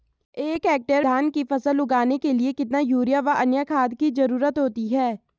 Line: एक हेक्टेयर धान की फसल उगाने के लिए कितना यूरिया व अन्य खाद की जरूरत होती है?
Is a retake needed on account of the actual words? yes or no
no